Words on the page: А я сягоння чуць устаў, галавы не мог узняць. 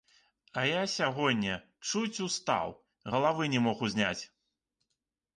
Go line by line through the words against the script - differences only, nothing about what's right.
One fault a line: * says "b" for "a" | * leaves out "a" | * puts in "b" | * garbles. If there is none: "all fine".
all fine